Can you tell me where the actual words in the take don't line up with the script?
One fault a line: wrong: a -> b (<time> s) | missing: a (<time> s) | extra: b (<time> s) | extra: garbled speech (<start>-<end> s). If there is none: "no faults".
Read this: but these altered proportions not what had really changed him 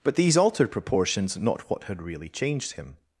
no faults